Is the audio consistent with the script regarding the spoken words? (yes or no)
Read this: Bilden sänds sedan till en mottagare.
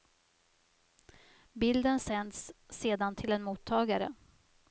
yes